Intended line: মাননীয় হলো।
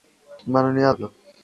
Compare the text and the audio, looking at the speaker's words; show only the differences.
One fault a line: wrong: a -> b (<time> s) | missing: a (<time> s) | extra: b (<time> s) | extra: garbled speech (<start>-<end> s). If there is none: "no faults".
no faults